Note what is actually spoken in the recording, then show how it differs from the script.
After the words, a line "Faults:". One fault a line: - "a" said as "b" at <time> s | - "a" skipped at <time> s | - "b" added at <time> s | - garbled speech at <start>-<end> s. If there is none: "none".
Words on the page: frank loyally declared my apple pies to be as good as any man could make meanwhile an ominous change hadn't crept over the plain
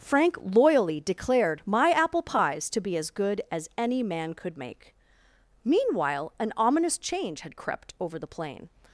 frank loyally declared my apple pies to be as good as any man could make meanwhile an ominous change had crept over the plain
Faults:
- "hadn't" said as "had" at 7.4 s